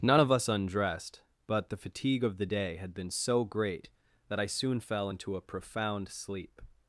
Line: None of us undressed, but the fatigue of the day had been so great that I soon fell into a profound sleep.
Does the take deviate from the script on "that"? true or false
false